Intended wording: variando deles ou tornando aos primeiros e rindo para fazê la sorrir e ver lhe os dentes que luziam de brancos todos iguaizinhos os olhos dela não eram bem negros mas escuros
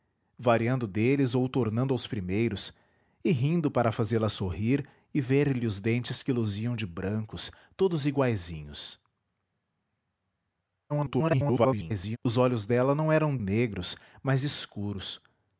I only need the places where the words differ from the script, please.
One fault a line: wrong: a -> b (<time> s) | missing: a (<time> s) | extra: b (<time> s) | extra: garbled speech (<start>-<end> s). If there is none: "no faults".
extra: garbled speech (10.9-12.2 s)
missing: bem (13.4 s)